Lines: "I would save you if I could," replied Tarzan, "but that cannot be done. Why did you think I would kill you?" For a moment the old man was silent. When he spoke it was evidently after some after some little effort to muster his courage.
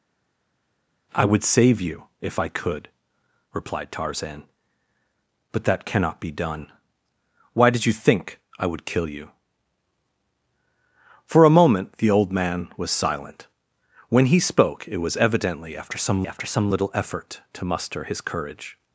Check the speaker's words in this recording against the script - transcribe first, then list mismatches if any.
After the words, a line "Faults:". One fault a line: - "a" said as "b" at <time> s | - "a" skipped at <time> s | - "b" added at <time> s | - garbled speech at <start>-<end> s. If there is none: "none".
"I would save you if I could," replied Tarzan, "but that cannot be done. Why did you think I would kill you?" For a moment the old man was silent. When he spoke it was evidently after some after some little effort to muster his courage.
Faults:
none